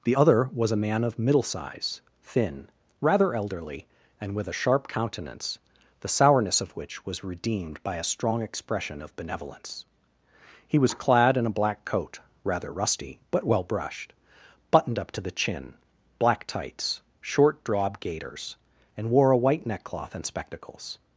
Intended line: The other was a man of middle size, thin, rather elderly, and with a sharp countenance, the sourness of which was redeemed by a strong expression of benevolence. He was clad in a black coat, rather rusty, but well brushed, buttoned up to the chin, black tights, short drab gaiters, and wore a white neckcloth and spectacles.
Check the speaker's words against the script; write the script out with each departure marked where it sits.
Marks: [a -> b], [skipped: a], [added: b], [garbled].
The other was a man of middle size, thin, rather elderly, and with a sharp countenance, the sourness of which was redeemed by a strong expression of benevolence. He was clad in a black coat, rather rusty, but well brushed, buttoned up to the chin, black tights, short drab gaiters, and wore a white neckcloth and spectacles.